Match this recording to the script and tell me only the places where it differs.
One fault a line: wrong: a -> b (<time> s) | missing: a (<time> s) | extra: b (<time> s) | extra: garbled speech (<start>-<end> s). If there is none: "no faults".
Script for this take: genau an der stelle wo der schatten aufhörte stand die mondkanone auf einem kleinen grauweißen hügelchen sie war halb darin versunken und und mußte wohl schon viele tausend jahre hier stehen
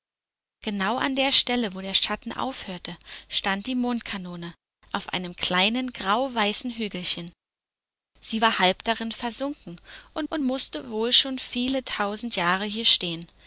no faults